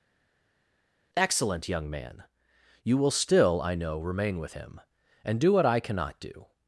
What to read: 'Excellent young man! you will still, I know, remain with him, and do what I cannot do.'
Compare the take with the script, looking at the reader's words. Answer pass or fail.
pass